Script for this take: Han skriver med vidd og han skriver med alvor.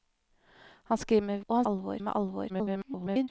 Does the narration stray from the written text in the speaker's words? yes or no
yes